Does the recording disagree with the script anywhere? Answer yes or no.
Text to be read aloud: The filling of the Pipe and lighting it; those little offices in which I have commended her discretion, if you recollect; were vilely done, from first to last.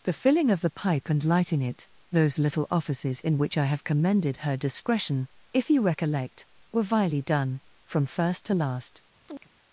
no